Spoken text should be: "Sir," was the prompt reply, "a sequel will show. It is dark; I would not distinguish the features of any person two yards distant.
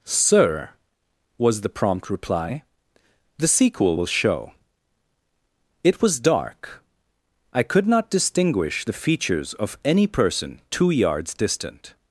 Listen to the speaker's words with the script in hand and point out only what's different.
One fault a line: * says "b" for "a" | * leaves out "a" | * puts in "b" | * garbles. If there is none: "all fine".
* says "the" for "a"
* says "was" for "is"
* says "could" for "would"